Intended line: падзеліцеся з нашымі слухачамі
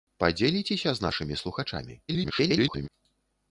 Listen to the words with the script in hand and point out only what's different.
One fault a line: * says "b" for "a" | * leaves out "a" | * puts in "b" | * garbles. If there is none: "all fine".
* garbles